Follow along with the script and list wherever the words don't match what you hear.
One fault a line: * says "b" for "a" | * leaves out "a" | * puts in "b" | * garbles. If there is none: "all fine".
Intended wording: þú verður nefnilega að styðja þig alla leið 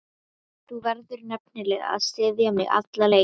* says "mig" for "þig"